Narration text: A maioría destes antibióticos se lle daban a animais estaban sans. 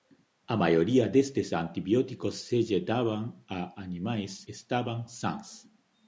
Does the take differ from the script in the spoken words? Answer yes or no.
no